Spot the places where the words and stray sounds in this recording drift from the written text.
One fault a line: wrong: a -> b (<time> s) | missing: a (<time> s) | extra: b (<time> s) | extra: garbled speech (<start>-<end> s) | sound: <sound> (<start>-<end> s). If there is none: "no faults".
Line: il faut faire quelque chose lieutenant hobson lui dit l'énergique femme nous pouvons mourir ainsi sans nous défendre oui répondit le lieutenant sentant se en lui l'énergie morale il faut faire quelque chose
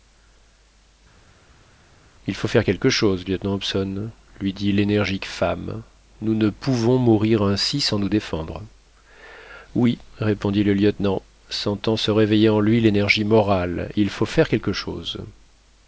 extra: ne (6.3 s)
extra: réveiller (12.1 s)